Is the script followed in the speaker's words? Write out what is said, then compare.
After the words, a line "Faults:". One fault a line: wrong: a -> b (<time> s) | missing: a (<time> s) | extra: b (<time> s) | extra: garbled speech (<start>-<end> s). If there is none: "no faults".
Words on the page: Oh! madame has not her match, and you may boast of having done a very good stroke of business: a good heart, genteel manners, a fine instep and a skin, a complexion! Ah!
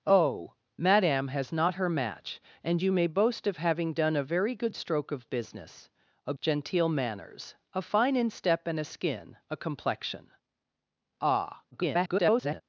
Oh! madame has not her match, and you may boast of having done a very good stroke of business: a genteel manners, a fine instep and a skin, a complexion! Ah! [garbled]
Faults:
missing: good heart (6.3 s)
extra: garbled speech (11.7-12.6 s)